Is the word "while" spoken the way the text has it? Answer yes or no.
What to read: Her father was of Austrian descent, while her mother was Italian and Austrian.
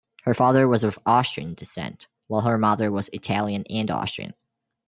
yes